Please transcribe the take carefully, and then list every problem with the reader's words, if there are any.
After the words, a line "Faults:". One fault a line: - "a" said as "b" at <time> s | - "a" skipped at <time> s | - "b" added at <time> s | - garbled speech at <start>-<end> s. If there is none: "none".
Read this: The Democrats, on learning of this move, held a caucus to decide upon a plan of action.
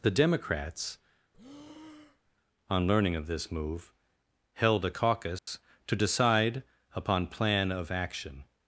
The Democrats, on learning of this move, held a caucus to decide upon plan of action.
Faults:
- "a" skipped at 7.3 s